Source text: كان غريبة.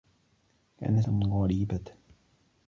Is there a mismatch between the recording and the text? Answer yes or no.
no